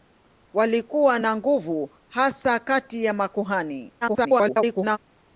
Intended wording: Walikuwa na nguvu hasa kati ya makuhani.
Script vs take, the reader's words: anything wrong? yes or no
yes